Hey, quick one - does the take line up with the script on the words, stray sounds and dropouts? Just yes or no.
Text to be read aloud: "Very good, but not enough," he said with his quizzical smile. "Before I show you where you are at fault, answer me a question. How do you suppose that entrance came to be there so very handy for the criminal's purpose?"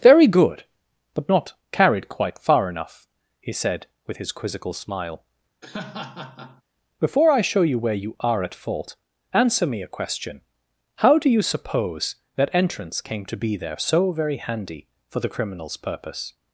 no